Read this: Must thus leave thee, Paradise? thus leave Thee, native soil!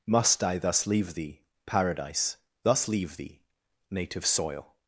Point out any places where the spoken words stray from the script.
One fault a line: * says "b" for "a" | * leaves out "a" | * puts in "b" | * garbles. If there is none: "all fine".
* puts in "I"